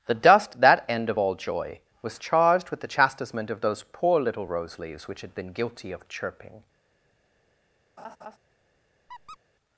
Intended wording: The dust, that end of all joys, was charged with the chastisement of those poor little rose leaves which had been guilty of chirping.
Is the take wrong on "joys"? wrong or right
wrong